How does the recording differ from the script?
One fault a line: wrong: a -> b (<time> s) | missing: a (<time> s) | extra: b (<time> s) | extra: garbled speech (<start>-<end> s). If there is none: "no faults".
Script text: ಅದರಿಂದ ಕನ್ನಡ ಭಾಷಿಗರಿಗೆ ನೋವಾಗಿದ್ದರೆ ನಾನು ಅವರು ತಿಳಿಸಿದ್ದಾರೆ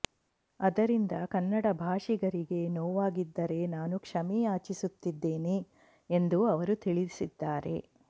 extra: ಕ್ಷಮೆ ಯಾಚಿಸುತ್ತಿದ್ದೇನೆ ಎಂದು (4.0 s)